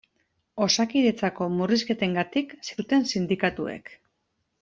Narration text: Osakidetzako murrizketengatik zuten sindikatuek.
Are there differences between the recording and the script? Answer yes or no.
no